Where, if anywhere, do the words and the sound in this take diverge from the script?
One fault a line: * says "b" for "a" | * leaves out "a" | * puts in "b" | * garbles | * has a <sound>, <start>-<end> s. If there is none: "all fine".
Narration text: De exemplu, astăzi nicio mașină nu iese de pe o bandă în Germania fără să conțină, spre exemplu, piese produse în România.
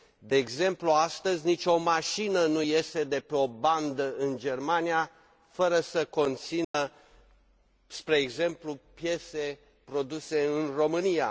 * has a dropout, 6.6-6.7 s